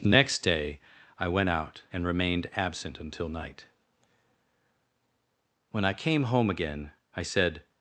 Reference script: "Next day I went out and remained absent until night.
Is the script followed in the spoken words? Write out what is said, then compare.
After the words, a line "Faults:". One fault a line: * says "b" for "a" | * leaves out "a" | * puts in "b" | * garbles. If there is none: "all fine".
"Next day I went out and remained absent until night. When I came home again I said
Faults:
* puts in "When I came home again I said"